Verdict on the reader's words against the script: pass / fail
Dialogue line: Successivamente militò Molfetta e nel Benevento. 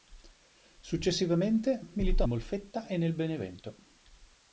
pass